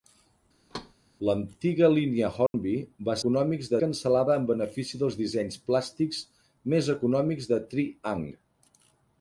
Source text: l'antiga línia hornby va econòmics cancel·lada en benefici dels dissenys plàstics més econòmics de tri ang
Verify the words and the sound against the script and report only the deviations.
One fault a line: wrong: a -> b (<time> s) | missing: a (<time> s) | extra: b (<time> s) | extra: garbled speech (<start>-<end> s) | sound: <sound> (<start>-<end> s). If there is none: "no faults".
sound: thud (0.7-0.9 s)
sound: dropout (2.5-2.5 s)